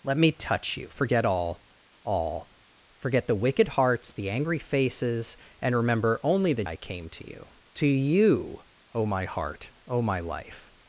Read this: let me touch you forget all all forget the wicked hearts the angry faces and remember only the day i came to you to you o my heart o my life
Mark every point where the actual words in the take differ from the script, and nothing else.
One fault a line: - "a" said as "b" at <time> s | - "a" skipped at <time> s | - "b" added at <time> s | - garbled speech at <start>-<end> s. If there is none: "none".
- "day" skipped at 6.6 s